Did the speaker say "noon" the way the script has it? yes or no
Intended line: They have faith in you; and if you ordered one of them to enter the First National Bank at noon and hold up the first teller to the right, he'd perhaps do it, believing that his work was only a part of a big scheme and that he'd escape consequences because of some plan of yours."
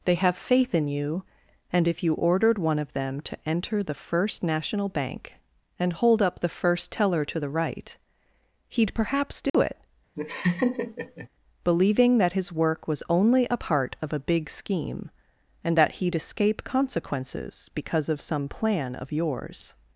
no